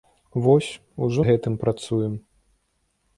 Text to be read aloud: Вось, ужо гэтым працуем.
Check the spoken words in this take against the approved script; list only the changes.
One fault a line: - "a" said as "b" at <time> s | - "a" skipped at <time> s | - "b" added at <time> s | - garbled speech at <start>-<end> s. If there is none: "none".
none